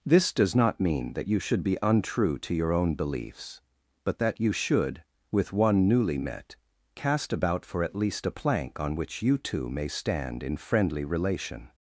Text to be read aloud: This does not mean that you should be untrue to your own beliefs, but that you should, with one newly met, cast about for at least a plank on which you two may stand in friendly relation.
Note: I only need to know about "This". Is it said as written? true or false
true